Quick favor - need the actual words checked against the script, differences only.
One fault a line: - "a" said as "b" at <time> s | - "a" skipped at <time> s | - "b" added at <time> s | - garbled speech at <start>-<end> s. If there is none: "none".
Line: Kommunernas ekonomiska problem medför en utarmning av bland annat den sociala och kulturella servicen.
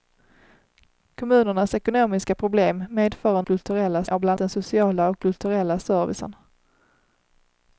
- "utarmning" said as "kulturella" at 3.4 s
- "annat" skipped at 4.4 s